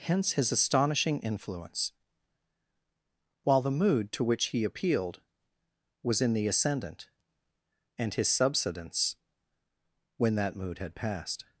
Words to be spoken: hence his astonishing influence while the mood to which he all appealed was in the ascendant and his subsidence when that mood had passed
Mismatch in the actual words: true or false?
true